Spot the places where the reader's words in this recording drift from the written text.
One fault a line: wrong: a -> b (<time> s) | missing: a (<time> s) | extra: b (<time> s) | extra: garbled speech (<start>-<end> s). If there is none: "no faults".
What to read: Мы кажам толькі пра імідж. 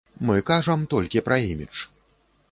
no faults